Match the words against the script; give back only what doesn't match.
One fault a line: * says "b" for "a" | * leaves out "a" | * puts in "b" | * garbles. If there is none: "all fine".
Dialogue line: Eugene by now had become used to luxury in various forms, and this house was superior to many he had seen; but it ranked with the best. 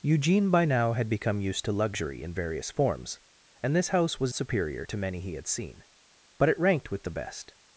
all fine